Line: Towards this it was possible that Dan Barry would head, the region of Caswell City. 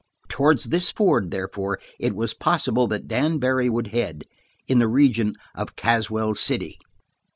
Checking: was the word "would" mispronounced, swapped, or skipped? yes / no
no